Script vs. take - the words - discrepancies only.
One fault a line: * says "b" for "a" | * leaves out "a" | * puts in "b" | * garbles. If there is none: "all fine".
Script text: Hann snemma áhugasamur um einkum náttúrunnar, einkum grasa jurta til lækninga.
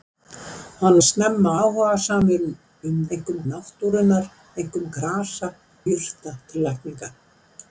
all fine